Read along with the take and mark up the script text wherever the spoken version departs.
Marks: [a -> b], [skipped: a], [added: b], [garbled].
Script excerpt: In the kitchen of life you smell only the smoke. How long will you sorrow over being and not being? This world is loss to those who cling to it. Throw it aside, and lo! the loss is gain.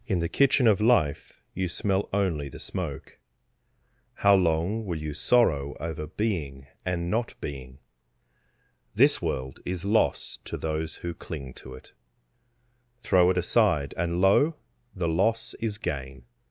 In the kitchen of life you smell only the smoke. How long will you sorrow over being and not being? This world is loss to those who cling to it. Throw it aside, and lo! the loss is gain.